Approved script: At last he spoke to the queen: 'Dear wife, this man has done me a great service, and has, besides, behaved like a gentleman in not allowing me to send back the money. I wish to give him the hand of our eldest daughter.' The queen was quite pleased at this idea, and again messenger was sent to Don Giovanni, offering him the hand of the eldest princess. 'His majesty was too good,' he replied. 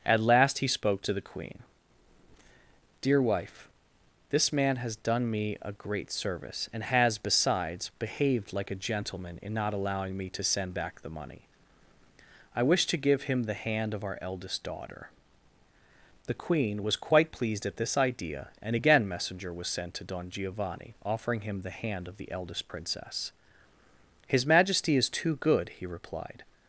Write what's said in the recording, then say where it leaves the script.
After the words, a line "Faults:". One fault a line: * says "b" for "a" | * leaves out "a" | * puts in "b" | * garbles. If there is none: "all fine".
At last he spoke to the queen: 'Dear wife, this man has done me a great service, and has, besides, behaved like a gentleman in not allowing me to send back the money. I wish to give him the hand of our eldest daughter.' The queen was quite pleased at this idea, and again messenger was sent to Don Giovanni, offering him the hand of the eldest princess. 'His majesty is too good,' he replied.
Faults:
* says "is" for "was"